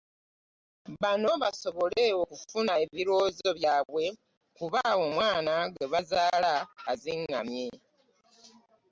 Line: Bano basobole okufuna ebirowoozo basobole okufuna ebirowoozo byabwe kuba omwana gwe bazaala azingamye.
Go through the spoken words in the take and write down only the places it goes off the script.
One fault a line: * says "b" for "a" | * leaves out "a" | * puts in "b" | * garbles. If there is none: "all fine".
* leaves out "basobole okufuna ebirowoozo"